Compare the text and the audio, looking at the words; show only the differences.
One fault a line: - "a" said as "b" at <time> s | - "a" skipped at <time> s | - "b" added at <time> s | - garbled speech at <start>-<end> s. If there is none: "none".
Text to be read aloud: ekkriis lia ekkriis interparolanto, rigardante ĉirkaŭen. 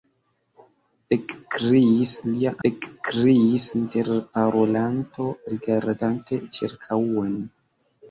none